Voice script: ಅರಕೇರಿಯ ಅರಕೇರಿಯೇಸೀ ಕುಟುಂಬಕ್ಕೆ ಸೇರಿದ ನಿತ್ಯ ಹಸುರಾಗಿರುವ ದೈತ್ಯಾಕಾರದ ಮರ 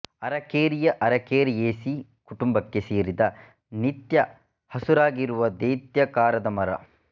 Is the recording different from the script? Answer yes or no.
no